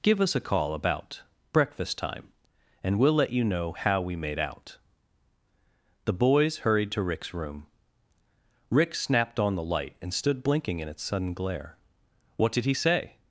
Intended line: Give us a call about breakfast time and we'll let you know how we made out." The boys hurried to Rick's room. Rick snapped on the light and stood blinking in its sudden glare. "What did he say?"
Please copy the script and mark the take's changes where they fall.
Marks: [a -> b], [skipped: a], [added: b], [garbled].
Give us a call about breakfast time and we'll let you know how we made out." The boys hurried to Rick's room. Rick snapped on the light and stood blinking in its sudden glare. "What did he say?"